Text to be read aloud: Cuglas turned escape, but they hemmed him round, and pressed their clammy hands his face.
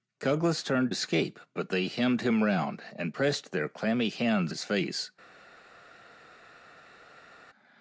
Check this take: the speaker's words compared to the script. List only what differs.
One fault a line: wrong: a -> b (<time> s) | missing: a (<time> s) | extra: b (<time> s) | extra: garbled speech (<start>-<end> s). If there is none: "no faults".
no faults